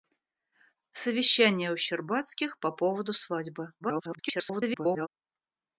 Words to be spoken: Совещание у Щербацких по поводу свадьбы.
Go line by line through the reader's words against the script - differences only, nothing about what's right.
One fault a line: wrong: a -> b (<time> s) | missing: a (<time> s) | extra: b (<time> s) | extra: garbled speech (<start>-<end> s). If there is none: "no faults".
extra: garbled speech (3.8-5.1 s)